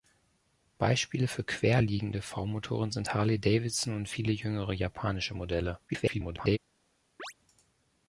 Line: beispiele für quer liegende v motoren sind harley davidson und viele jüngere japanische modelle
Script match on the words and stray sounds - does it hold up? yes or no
no